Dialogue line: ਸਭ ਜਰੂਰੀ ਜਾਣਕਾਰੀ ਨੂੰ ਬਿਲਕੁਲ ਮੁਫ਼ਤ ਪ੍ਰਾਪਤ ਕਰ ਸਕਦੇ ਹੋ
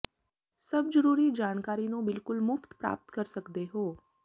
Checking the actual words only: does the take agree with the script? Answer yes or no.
yes